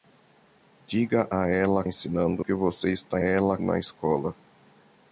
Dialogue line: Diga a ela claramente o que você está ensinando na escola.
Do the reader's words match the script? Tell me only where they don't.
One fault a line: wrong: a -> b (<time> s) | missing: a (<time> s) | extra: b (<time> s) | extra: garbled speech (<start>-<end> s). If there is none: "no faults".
wrong: claramente -> ensinando (1.9 s)
wrong: ensinando -> ela (3.2 s)